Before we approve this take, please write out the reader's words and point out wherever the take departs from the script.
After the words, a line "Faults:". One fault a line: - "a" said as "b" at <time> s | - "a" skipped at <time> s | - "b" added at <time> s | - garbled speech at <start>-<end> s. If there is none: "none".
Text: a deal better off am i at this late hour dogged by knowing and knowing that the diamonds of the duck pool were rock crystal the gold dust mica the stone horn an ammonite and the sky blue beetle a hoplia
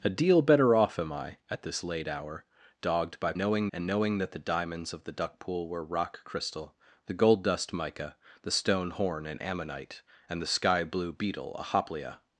a deal better off am i at this late hour dogged by knowing and knowing that the diamonds of the duck pool were rock crystal the gold dust mica the stone horn an ammonite and the sky blue beetle a hoplia
Faults:
none